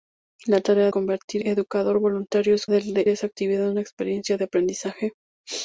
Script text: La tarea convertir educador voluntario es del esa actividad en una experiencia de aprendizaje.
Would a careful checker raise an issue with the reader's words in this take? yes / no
no